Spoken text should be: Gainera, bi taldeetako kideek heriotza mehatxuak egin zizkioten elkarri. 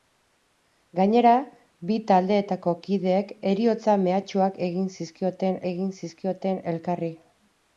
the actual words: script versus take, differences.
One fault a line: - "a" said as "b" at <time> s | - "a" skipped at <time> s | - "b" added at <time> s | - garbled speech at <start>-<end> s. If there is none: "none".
- "egin zizkioten" added at 5.7 s